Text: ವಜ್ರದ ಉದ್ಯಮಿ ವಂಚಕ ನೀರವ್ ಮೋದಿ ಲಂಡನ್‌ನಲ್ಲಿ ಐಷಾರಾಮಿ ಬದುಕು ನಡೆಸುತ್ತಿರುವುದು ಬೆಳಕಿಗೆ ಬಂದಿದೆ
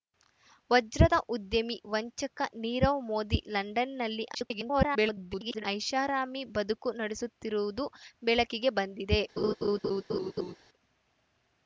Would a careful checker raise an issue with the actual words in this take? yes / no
yes